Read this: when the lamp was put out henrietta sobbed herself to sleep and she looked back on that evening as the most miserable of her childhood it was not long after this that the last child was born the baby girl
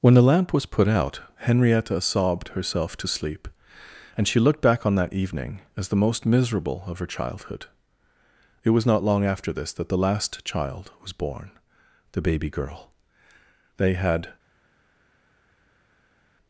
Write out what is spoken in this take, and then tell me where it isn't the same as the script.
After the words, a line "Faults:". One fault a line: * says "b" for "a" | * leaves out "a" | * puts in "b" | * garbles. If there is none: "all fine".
when the lamp was put out henrietta sobbed herself to sleep and she looked back on that evening as the most miserable of her childhood it was not long after this that the last child was born the baby girl they had
Faults:
* puts in "they had"